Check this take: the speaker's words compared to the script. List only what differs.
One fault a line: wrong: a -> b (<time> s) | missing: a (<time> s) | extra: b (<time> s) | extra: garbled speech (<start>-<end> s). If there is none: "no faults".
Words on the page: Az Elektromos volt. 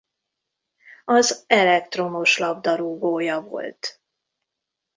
extra: labdarúgója (2.4 s)